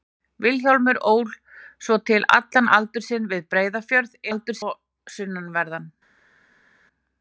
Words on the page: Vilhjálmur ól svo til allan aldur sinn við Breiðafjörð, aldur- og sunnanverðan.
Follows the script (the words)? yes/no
yes